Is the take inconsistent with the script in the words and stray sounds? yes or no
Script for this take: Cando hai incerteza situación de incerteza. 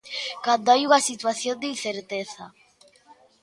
yes